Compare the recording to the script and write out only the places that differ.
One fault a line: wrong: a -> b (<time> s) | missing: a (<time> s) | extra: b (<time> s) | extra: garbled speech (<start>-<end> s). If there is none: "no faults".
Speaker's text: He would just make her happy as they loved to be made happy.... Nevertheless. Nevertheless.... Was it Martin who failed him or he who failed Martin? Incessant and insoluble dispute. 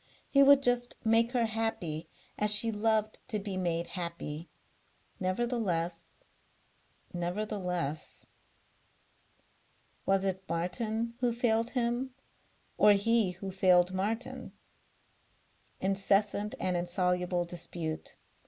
wrong: they -> she (2.5 s)